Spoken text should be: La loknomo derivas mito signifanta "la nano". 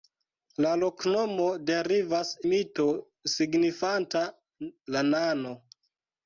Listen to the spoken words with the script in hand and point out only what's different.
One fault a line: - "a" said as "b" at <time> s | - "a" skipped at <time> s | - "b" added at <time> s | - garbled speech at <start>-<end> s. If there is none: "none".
none